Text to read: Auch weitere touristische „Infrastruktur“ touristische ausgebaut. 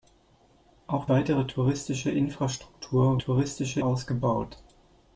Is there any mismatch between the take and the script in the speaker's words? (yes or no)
no